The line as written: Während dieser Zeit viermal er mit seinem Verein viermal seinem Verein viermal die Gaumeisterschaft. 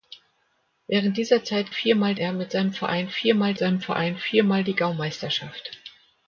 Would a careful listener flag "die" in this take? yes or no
no